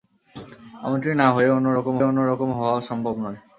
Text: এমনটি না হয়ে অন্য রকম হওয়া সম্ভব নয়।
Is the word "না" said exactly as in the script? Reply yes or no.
yes